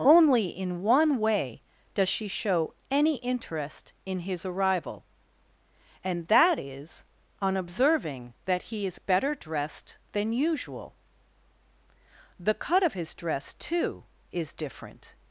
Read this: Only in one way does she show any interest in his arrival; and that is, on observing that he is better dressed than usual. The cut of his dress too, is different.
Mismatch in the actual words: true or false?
false